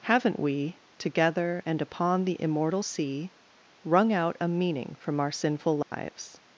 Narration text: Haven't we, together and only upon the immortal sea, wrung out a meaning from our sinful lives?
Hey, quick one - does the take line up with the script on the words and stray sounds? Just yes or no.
no